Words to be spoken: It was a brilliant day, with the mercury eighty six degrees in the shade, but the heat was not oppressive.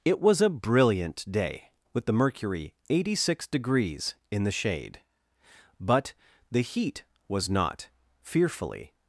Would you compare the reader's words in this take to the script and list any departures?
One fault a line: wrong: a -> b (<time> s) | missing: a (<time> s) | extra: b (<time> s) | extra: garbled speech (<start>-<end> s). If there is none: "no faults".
wrong: oppressive -> fearfully (8.2 s)